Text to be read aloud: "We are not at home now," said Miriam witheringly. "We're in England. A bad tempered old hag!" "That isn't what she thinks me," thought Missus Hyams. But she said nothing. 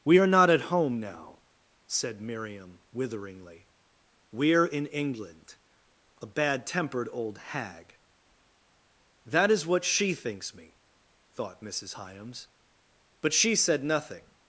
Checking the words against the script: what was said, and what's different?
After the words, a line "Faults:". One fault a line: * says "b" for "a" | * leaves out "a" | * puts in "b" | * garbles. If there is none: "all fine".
"We are not at home now," said Miriam witheringly. "We're in England. A bad tempered old hag!" "That is what she thinks me," thought Missus Hyams. But she said nothing.
Faults:
* says "is" for "isn't"